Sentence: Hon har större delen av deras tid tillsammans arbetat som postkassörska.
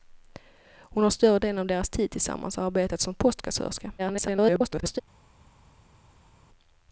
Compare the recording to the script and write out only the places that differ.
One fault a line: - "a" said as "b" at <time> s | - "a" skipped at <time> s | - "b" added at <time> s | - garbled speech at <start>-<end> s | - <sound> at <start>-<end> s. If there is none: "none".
- garbled speech at 4.0-5.0 s